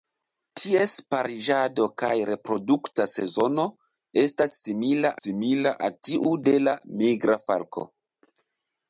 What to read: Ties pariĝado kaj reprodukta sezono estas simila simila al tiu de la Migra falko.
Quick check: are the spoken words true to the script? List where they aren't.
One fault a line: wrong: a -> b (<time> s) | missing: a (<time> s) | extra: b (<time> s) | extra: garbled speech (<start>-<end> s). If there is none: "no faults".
no faults